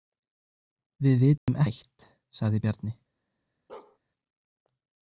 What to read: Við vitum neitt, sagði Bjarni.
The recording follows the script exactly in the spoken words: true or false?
true